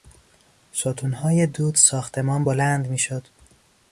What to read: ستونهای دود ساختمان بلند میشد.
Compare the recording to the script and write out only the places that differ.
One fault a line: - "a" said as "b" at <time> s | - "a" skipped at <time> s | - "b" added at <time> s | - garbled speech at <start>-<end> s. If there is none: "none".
none